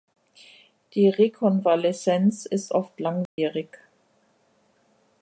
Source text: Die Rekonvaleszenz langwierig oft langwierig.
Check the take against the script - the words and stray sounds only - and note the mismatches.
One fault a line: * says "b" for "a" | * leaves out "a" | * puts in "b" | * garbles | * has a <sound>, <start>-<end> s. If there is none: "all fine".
* says "ist" for "langwierig"
* has a dropout, 3.3-3.4 s